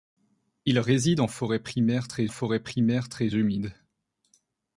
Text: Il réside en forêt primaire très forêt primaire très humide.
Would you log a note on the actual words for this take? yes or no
no